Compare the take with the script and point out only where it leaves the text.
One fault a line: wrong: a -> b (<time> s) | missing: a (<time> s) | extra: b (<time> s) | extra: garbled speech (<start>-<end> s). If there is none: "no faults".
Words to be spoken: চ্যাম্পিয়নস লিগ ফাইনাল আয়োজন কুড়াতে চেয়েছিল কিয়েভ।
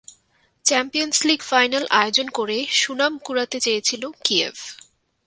extra: করে সুনাম (2.3 s)